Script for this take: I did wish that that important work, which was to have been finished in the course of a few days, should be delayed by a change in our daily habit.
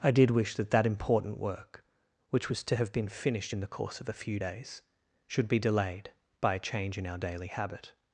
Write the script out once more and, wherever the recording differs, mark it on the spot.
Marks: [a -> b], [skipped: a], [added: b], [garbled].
I did wish that that important work, which was to have been finished in the course of a few days, should be delayed by a change in our daily habit.